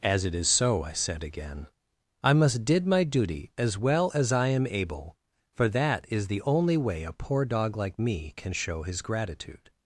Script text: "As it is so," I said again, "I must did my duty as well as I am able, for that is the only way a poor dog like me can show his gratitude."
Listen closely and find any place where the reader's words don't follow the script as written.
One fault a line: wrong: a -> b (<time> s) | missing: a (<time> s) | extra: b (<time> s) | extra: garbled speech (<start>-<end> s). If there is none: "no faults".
no faults